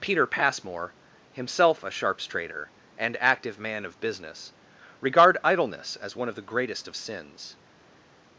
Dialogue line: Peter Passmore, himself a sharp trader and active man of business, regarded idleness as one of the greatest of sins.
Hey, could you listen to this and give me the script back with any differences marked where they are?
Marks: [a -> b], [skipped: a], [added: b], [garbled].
Peter Passmore, himself a [sharp -> sharps] trader and active man of business, [regarded -> regard] idleness as one of the greatest of sins.